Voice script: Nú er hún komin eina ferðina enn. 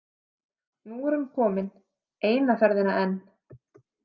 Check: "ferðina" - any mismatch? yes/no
no